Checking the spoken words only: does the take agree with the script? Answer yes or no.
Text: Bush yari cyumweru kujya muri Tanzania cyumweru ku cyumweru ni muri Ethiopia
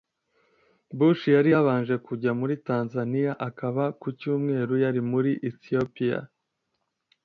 no